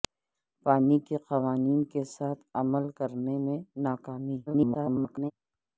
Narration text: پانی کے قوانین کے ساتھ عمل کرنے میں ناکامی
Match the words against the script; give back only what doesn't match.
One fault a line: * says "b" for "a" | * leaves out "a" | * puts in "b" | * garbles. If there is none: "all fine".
* garbles